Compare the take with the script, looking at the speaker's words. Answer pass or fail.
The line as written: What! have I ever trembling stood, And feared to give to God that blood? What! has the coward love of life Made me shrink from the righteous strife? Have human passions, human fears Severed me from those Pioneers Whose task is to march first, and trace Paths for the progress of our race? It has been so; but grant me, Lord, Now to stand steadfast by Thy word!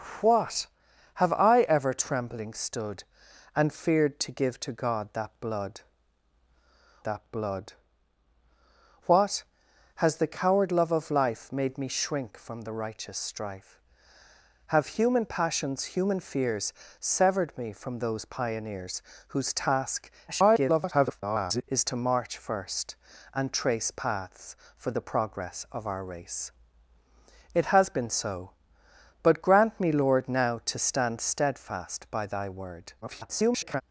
fail